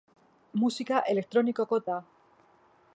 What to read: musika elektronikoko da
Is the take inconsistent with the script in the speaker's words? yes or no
no